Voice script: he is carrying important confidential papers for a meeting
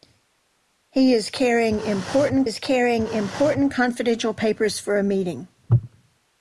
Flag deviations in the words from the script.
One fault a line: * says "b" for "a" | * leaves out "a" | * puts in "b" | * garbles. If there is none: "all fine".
* puts in "is carrying important"